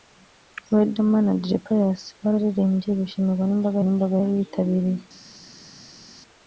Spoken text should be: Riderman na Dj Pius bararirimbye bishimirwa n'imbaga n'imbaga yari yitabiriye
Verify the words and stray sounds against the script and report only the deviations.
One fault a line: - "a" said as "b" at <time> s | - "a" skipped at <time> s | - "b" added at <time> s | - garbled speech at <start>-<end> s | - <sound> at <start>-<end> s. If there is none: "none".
none